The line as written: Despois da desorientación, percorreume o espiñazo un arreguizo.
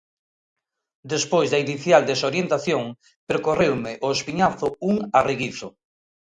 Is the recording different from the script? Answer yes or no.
yes